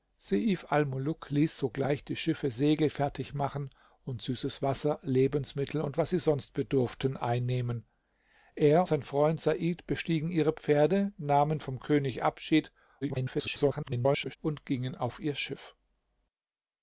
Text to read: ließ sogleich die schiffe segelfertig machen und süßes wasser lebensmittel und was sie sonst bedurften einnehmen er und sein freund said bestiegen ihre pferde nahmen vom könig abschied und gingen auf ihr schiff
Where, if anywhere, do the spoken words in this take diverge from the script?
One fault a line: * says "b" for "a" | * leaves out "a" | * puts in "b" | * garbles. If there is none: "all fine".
* leaves out "und"
* garbles